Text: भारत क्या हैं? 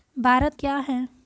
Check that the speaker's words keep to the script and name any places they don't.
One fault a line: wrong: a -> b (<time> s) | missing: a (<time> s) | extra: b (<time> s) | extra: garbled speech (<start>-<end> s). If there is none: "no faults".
no faults